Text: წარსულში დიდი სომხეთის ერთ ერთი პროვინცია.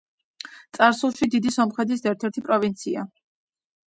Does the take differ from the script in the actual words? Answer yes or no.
no